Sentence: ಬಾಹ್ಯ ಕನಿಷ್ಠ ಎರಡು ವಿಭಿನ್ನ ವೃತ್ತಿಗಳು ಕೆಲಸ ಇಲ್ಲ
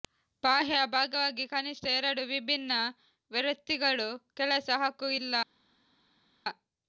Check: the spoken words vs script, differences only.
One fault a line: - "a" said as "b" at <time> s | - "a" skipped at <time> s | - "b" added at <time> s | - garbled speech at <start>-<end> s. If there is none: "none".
- "ಭಾಗವಾಗಿ" added at 0.9 s
- "ಹಕ್ಕು" added at 4.8 s